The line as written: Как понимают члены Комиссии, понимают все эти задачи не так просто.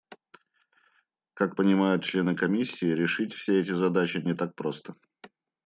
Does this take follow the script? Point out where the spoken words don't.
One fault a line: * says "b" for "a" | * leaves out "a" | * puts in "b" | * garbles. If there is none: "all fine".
* says "решить" for "понимают"